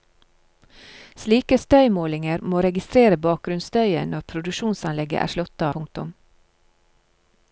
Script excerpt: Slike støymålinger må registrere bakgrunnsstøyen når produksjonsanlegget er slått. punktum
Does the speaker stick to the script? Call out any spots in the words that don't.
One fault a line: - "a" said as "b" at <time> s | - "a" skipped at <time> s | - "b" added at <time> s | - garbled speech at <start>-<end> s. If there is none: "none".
none